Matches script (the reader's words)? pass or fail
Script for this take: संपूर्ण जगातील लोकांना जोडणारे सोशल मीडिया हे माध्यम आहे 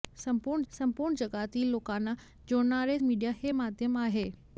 fail